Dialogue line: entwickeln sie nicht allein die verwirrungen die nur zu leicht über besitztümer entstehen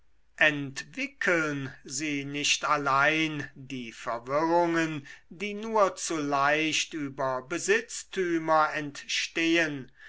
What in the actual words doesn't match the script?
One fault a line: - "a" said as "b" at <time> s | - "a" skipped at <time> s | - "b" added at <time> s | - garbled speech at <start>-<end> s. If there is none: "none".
none